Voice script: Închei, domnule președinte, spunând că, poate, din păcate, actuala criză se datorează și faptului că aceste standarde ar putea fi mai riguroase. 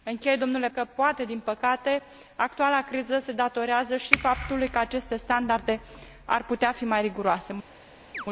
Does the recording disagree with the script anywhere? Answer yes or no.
yes